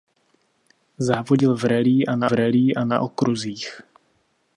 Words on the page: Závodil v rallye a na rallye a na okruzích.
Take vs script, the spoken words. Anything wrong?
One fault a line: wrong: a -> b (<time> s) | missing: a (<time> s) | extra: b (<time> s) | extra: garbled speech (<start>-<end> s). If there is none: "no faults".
no faults